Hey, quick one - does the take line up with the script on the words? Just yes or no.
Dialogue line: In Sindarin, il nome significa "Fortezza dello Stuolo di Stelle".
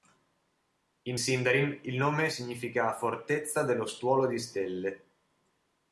yes